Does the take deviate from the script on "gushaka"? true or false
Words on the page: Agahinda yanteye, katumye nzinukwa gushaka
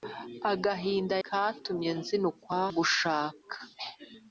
false